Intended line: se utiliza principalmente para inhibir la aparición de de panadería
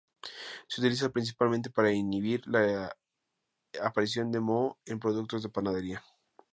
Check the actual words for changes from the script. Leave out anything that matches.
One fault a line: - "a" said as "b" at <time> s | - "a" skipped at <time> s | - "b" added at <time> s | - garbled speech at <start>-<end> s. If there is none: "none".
- "moho en productos" added at 4.4 s